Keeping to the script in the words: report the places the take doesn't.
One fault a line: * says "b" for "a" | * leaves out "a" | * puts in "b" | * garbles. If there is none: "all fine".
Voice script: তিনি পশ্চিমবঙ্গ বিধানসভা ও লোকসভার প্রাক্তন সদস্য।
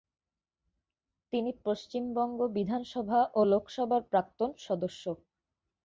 all fine